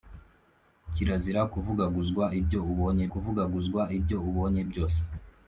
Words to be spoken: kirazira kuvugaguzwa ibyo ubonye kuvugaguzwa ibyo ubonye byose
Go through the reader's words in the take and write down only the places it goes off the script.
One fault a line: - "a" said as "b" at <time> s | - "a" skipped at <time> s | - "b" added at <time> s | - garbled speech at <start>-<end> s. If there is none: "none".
none